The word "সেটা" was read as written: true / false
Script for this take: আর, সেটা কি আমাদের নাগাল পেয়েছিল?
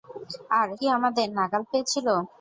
false